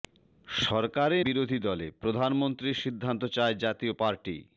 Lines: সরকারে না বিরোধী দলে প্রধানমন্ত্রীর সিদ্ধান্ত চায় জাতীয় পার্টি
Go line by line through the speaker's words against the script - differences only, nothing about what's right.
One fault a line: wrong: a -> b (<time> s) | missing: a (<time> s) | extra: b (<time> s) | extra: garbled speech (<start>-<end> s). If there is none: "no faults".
missing: না (1.2 s)